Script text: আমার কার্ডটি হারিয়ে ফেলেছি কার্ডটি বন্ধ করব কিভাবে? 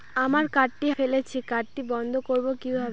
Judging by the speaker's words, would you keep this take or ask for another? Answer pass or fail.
fail